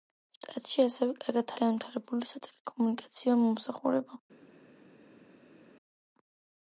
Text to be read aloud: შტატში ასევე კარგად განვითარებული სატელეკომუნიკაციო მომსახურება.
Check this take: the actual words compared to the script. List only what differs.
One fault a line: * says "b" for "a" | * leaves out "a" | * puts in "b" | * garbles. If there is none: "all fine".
all fine